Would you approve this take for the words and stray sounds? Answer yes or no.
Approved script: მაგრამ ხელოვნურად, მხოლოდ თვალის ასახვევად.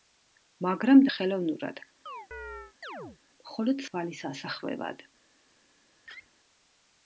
no